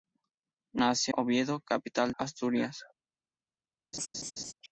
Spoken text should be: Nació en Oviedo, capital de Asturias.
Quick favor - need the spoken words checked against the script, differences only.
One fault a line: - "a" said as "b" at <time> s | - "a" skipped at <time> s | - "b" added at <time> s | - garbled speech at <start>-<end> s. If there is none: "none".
- "en" skipped at 1.1 s
- "de" skipped at 2.1 s